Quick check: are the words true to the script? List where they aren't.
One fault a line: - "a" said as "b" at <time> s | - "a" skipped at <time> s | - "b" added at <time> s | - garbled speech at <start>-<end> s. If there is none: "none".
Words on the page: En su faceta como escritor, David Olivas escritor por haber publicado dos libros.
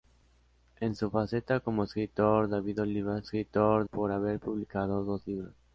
none